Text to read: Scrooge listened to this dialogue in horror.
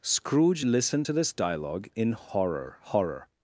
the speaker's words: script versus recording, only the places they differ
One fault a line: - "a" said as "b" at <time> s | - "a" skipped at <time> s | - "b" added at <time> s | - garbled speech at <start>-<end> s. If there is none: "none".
- "horror" added at 2.8 s